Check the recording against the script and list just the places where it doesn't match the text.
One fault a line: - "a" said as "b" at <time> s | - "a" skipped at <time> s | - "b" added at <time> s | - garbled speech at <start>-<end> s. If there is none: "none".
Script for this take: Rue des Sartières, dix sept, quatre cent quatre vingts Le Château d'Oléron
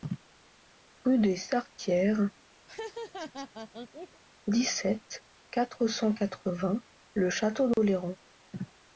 none